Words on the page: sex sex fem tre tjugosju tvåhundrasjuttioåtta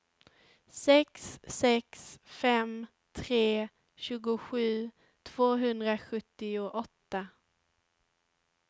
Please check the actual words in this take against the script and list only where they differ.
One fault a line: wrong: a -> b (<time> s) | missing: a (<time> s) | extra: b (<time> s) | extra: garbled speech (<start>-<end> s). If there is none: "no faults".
no faults